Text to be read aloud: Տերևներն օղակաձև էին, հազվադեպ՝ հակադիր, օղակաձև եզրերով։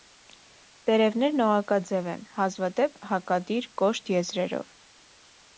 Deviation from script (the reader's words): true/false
true